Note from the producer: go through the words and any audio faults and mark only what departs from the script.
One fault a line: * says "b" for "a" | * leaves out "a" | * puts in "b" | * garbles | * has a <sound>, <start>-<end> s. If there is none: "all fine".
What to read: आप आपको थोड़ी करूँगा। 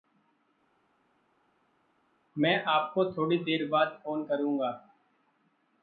* says "मैं" for "आप"
* puts in "देर बाद फ़ोन"